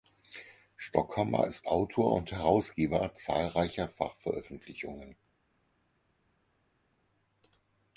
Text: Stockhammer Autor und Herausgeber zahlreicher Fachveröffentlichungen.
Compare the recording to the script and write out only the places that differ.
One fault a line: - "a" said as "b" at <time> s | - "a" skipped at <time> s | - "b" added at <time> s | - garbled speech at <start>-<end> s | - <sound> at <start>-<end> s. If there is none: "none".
- "ist" added at 1.4 s